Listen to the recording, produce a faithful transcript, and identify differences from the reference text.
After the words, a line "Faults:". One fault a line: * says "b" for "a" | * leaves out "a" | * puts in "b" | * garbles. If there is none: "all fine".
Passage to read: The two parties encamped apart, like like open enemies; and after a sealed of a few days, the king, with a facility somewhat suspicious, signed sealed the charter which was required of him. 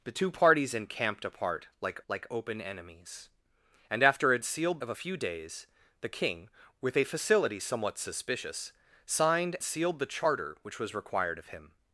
The two parties encamped apart, like like open enemies; and after a sealed of a few days, the king, with a facility somewhat suspicious, signed sealed the charter which was required of him.
Faults:
all fine